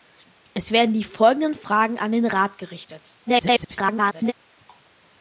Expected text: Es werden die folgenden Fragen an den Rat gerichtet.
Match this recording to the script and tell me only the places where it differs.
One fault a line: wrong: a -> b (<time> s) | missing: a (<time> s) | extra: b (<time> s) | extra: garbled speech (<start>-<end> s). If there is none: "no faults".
extra: garbled speech (3.3-4.3 s)